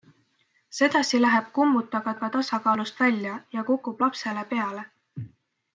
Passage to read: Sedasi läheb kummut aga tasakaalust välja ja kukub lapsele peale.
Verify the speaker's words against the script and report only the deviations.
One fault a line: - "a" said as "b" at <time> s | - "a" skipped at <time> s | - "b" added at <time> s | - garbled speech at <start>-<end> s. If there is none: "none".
- "aga" added at 2.2 s